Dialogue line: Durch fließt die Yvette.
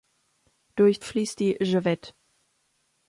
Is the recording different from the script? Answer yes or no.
no